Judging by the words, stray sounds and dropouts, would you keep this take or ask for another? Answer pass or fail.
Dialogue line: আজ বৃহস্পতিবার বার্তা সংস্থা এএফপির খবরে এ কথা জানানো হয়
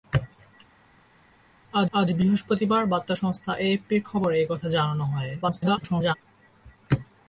fail